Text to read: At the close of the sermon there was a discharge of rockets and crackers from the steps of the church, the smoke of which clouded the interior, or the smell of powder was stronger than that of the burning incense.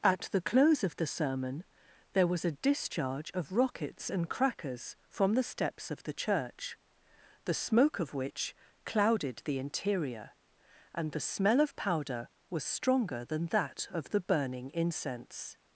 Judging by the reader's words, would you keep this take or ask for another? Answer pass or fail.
fail